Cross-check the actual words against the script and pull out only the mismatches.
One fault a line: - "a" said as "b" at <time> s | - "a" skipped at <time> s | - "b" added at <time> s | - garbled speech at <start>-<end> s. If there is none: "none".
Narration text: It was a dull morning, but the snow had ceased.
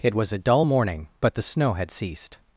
none